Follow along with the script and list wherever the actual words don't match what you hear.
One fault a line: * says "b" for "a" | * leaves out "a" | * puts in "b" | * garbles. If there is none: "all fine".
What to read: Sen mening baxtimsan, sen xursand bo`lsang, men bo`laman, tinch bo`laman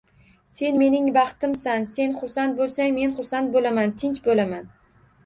* puts in "xursand"